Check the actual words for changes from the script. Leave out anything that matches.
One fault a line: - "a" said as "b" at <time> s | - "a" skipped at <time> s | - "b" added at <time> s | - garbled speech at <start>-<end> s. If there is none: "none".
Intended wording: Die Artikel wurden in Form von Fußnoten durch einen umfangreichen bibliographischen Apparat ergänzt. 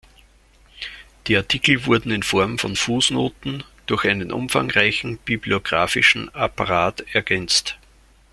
none